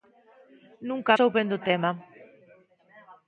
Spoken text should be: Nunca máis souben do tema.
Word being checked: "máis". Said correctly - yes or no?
no